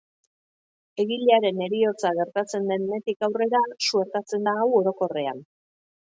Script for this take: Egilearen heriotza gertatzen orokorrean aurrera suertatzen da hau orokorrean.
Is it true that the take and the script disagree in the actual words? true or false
true